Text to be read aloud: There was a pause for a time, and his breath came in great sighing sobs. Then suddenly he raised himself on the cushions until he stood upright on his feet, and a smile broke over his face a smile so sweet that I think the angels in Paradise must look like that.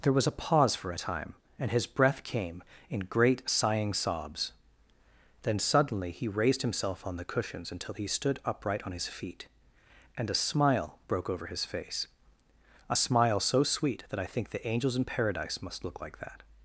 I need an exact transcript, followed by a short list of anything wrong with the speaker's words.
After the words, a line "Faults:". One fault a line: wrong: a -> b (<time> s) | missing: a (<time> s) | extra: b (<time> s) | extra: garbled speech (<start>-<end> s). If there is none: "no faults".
There was a pause for a time, and his breath came in great sighing sobs. Then suddenly he raised himself on the cushions until he stood upright on his feet, and a smile broke over his face a smile so sweet that I think the angels in Paradise must look like that.
Faults:
no faults